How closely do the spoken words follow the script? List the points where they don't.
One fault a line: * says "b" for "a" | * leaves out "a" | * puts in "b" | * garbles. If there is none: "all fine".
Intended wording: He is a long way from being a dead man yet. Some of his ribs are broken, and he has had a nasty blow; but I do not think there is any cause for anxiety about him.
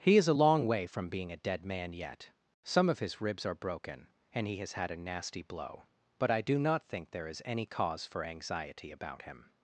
all fine